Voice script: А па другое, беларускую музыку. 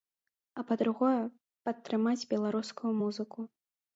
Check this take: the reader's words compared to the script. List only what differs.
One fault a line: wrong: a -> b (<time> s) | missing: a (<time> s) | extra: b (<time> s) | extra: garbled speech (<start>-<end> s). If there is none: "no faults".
extra: падтрымаць (1.7 s)